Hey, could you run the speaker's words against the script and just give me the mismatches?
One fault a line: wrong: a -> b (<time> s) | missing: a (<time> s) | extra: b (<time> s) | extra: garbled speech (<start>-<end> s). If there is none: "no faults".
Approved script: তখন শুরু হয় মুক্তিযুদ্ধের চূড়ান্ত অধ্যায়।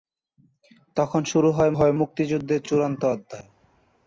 extra: হয় (1.7 s)